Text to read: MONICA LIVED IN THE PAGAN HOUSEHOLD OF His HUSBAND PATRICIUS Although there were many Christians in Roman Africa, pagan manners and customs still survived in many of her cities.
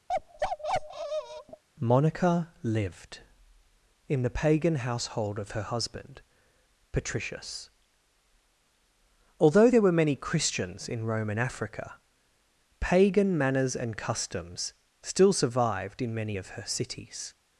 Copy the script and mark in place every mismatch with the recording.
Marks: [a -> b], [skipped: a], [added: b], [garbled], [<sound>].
[bark] MONICA LIVED IN THE PAGAN HOUSEHOLD OF [His -> HER] HUSBAND PATRICIUS Although there were many Christians in Roman Africa, pagan manners and customs still survived in many of her cities.